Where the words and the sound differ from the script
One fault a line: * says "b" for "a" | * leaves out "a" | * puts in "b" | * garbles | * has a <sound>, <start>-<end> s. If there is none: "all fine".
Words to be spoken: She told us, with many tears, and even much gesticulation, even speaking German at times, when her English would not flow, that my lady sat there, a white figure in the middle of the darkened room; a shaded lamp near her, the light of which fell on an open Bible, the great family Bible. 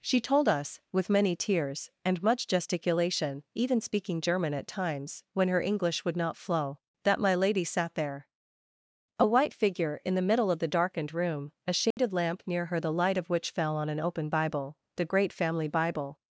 * leaves out "even"
* has a dropout, 11.9-12.0 s